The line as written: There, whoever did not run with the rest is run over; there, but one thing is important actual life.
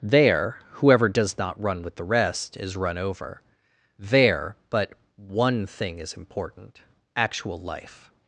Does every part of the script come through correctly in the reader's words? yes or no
no